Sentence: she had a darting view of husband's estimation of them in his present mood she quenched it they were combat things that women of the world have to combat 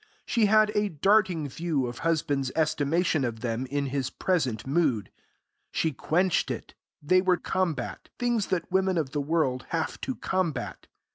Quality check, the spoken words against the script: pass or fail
pass